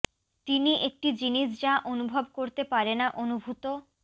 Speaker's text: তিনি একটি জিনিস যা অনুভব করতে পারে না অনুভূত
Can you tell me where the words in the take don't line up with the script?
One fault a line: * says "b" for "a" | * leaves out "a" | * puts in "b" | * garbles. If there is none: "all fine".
all fine